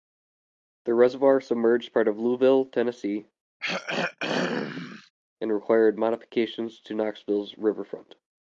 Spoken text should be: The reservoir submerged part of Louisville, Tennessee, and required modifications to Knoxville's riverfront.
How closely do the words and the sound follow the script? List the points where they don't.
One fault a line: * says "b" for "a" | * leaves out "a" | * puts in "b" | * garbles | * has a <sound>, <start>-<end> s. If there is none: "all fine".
* has a throat clearing, 3.6-5.1 s